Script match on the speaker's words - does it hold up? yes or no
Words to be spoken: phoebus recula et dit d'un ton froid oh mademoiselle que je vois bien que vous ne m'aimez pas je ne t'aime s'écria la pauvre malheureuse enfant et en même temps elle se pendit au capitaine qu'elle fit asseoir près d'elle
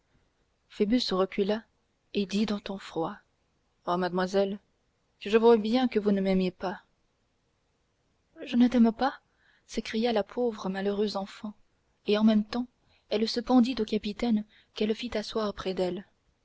no